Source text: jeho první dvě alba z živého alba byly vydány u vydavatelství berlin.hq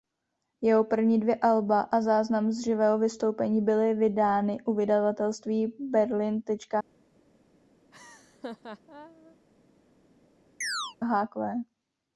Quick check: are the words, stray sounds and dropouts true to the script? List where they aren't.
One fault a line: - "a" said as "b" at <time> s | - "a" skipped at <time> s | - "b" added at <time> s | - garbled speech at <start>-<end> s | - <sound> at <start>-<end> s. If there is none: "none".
- "a záznam" added at 1.8 s
- "alba" said as "vystoupení" at 3.0 s
- laugh at 7.9-9.4 s
- chirp at 10.6-11.0 s